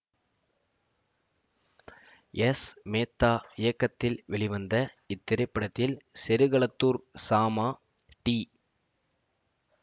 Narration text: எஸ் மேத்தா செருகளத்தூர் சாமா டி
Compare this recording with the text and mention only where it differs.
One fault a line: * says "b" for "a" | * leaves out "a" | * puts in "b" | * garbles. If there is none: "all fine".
* puts in "இயக்கத்தில் வெளிவந்த இத்திரைப்படத்தில்"